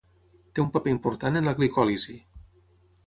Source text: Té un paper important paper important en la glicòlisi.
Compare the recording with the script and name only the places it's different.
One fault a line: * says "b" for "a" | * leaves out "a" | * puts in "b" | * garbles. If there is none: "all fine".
* leaves out "paper important"